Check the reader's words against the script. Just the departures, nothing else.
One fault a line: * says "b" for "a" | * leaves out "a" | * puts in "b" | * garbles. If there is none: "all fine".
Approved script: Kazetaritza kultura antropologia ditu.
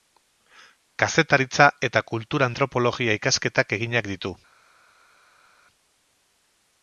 * puts in "eta"
* puts in "ikasketak eginak"